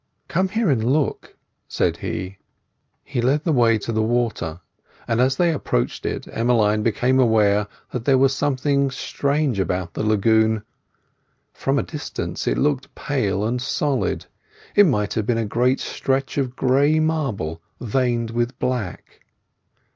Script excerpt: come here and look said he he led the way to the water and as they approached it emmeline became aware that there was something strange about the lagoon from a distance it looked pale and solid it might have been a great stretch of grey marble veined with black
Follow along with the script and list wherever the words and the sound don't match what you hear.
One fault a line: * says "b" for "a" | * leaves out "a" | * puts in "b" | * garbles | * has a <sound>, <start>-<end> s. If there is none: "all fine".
all fine